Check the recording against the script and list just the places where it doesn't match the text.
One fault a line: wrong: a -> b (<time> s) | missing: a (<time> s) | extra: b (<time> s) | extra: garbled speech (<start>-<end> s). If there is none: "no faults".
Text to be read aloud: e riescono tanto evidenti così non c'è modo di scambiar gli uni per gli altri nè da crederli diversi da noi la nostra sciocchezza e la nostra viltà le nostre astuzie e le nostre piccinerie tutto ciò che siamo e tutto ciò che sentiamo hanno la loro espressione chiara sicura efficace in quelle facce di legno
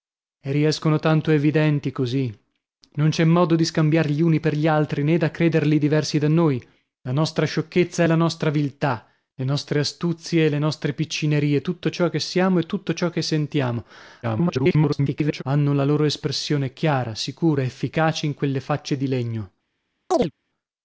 extra: garbled speech (14.2-15.4 s)